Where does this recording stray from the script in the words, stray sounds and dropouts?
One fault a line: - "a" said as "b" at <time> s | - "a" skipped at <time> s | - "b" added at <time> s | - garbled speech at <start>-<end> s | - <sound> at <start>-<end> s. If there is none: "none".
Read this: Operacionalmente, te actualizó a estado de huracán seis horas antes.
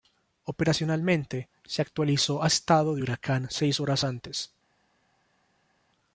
- "te" said as "se" at 1.6 s